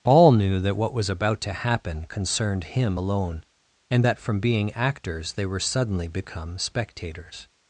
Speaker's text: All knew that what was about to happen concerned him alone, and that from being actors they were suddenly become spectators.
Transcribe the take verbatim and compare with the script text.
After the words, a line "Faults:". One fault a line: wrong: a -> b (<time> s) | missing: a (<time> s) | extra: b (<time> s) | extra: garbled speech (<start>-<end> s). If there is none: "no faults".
All knew that what was about to happen concerned him alone, and that from being actors they were suddenly become spectators.
Faults:
no faults